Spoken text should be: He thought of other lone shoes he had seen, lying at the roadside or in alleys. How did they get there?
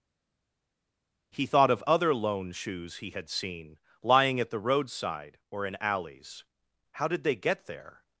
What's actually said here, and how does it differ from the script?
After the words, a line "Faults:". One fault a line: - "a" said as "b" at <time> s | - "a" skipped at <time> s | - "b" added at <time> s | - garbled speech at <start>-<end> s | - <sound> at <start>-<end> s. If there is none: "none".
He thought of other lone shoes he had seen, lying at the roadside or in alleys. How did they get there?
Faults:
none